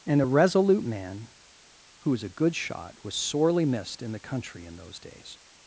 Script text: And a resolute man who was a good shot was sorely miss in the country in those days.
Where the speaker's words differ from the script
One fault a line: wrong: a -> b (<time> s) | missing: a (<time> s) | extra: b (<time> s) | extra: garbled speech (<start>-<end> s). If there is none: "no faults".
wrong: miss -> missed (3.7 s)